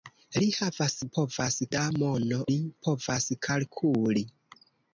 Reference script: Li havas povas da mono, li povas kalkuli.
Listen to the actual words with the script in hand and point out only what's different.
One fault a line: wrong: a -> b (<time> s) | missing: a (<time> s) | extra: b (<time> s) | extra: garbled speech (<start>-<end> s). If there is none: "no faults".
no faults